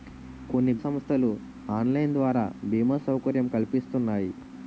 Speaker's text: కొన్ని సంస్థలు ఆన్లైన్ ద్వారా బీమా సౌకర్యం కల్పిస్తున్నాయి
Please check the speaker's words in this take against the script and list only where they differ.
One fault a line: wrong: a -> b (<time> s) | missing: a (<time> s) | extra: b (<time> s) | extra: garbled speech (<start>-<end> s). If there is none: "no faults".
no faults